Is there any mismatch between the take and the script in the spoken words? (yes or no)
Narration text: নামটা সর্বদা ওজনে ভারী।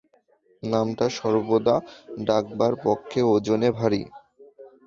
yes